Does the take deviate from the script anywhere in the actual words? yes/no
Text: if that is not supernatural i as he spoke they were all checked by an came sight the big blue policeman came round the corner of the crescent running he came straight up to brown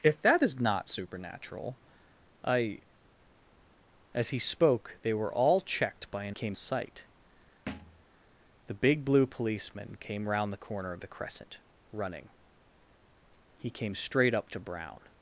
no